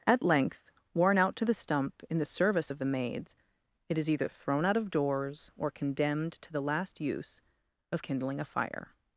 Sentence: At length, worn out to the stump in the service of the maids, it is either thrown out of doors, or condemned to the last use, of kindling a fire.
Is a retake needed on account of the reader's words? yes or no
no